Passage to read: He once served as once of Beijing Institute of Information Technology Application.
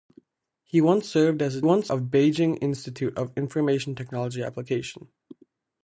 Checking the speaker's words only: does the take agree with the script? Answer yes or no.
yes